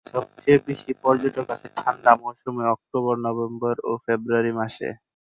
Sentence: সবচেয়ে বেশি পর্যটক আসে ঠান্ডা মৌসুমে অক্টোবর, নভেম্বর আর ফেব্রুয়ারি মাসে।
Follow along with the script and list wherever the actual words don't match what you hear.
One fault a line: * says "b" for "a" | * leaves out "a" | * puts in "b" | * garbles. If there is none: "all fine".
* says "ও" for "আর"